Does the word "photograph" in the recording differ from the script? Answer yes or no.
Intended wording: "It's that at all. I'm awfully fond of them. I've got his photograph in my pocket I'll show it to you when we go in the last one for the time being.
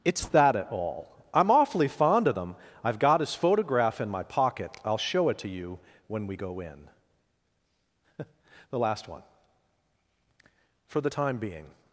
no